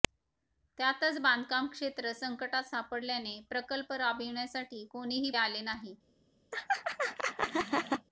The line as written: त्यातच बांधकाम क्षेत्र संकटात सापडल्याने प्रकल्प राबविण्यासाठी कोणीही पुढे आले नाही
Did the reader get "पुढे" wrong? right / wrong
wrong